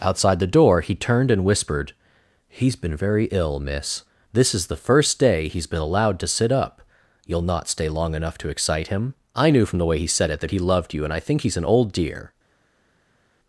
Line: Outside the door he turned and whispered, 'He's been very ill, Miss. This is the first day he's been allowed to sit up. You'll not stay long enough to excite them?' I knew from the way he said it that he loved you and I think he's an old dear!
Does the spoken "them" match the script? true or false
false